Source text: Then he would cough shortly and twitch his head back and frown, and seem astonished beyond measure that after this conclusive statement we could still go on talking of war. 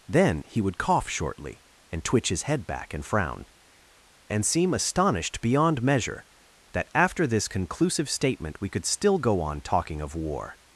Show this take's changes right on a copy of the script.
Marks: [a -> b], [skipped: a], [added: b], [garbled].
Then he would cough shortly and twitch his head back and frown, and seem astonished beyond measure that after this conclusive statement we could still go on talking of war.